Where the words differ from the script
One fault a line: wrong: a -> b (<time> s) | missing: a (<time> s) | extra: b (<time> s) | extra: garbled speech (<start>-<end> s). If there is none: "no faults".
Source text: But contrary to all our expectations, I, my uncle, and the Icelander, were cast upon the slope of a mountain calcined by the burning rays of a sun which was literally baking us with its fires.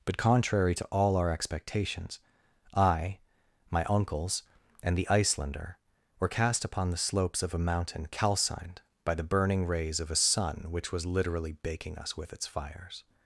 wrong: uncle -> uncles (3.9 s)
wrong: slope -> slopes (7.0 s)